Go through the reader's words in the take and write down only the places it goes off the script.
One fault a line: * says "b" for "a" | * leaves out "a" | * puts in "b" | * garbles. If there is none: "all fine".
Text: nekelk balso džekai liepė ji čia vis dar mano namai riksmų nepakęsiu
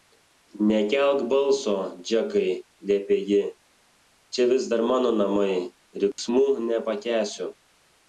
all fine